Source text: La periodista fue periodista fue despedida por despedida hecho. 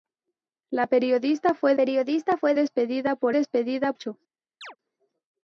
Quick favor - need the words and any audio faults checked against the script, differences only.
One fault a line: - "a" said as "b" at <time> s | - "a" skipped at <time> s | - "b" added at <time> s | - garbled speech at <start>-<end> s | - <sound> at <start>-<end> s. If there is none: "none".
- chirp at 4.6-4.8 s